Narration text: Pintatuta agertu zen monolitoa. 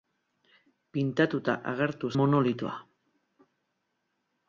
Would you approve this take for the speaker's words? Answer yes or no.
no